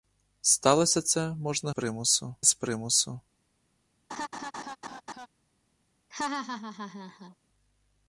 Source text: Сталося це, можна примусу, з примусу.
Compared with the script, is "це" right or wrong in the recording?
right